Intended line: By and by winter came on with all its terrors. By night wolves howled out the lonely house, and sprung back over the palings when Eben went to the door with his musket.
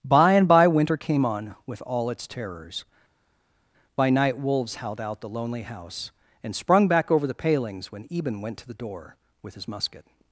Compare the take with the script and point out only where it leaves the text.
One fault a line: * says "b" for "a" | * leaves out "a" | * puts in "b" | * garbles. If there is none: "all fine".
all fine